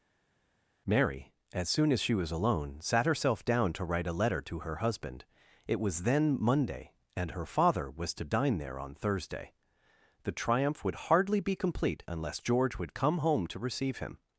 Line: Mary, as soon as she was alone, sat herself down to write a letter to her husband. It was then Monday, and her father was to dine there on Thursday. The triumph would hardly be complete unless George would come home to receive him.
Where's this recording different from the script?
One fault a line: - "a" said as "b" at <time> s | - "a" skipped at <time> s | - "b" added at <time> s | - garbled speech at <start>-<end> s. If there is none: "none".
none